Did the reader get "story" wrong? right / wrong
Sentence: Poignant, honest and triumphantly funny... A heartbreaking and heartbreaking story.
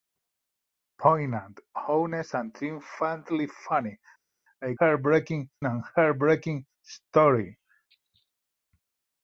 right